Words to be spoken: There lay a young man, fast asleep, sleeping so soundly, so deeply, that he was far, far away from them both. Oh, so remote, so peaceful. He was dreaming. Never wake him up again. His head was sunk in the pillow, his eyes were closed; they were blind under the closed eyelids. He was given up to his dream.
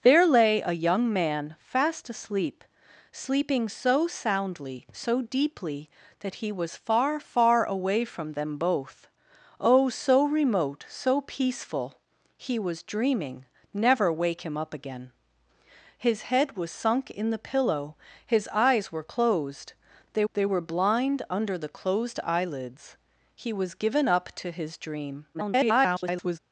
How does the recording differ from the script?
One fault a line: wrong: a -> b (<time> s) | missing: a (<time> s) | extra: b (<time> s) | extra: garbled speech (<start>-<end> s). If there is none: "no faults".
extra: they (20.3 s)
extra: garbled speech (25.3-26.4 s)